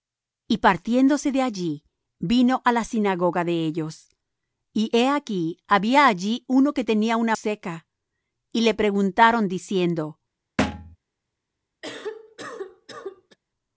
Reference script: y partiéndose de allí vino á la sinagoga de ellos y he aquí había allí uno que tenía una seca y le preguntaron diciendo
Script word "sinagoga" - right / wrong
right